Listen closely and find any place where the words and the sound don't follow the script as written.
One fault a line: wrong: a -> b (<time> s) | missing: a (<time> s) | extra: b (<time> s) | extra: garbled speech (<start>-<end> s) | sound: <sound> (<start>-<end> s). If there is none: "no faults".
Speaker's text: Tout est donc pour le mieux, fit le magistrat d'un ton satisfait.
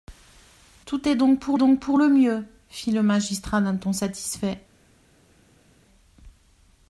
extra: donc pour (1.6 s)